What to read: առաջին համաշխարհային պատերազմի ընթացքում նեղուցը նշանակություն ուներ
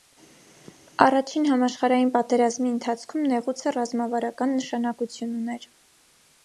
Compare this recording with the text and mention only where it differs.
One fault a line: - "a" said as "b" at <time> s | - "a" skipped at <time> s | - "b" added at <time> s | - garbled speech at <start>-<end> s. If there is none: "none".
- "ռազմավարական" added at 3.8 s